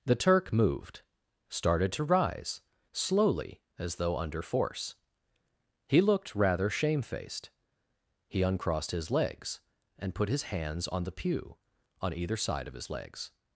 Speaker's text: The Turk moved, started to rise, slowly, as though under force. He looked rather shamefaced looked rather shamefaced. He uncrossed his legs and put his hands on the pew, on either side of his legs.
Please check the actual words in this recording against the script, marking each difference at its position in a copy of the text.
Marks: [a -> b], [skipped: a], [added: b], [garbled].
The Turk moved, started to rise, slowly, as though under force. He looked rather shamefaced [skipped: looked rather shamefaced.] He uncrossed his legs and put his hands on the pew, on either side of his legs.